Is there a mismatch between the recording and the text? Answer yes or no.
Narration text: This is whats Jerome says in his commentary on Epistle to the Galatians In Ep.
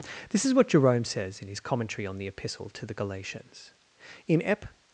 yes